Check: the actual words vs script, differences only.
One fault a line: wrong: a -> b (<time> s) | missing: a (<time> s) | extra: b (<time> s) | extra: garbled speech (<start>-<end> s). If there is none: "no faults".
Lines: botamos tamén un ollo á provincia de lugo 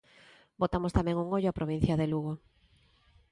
no faults